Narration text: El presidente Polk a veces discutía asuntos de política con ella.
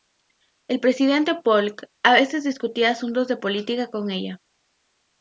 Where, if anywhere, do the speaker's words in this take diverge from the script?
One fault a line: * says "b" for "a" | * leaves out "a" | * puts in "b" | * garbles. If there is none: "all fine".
all fine